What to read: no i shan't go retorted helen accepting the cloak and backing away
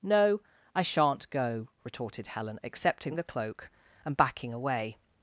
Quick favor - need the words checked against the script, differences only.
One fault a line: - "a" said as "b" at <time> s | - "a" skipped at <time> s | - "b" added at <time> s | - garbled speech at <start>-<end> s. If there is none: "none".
none